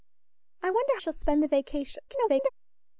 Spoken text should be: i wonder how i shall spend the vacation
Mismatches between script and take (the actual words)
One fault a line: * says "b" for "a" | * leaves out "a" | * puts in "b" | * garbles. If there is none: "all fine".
* leaves out "how i"
* garbles